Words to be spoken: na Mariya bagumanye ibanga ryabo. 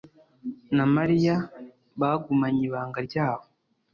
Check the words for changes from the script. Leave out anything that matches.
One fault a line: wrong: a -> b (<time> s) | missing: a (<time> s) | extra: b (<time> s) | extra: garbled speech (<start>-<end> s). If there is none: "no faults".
no faults